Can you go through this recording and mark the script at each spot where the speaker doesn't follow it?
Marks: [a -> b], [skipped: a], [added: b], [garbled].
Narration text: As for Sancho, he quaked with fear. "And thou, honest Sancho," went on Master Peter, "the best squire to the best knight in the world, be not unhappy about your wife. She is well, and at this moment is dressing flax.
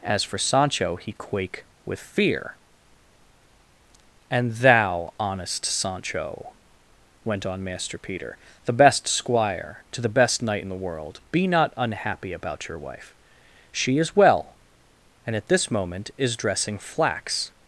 As for Sancho, he [quaked -> quake] with fear. "And thou, honest Sancho," went on Master Peter, "the best squire to the best knight in the world, be not unhappy about your wife. She is well, and at this moment is dressing flax.